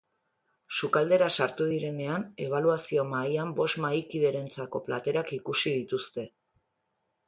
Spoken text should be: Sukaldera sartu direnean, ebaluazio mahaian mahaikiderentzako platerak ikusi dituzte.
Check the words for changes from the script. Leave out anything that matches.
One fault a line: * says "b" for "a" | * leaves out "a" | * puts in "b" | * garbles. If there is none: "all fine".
* puts in "bost"